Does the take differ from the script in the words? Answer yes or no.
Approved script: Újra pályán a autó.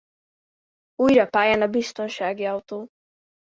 yes